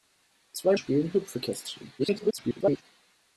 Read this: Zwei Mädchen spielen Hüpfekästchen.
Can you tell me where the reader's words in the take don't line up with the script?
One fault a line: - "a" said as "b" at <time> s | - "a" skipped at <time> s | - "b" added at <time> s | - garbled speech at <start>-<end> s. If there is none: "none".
- "Mädchen" skipped at 0.8 s
- garbled speech at 2.0-2.8 s